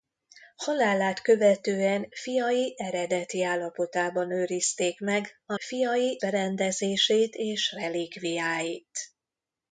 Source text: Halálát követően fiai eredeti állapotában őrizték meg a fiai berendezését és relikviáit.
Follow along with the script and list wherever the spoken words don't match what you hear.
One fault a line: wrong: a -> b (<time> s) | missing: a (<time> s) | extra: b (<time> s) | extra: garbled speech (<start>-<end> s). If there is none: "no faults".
no faults